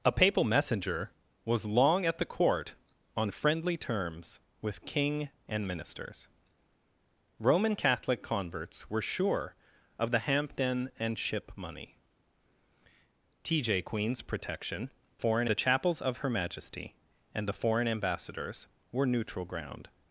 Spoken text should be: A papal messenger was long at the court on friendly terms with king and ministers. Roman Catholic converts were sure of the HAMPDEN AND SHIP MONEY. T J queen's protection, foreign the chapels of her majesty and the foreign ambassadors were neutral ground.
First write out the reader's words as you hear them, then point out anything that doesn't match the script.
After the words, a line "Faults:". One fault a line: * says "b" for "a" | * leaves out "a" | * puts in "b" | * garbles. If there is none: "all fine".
A papal messenger was long at the court on friendly terms with king and ministers. Roman Catholic converts were sure of the HAMPDEN AND SHIP MONEY. T J queen's protection, foreign the chapels of her majesty and the foreign ambassadors were neutral ground.
Faults:
all fine